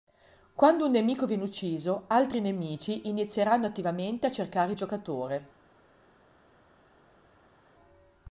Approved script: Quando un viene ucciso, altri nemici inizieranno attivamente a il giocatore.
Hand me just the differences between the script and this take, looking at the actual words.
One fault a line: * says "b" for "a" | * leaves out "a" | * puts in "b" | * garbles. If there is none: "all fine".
* puts in "nemico"
* puts in "cercare"